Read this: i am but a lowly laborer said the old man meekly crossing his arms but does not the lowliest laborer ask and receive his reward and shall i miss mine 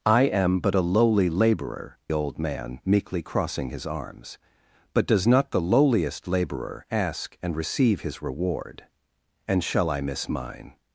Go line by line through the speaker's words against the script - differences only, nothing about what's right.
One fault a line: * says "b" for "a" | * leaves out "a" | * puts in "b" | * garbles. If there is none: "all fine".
* leaves out "said the"